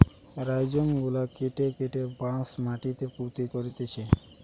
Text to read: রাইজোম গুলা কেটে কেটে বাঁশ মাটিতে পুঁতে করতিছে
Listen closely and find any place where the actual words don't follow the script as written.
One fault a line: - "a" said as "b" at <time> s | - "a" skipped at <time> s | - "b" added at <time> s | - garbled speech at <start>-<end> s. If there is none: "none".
none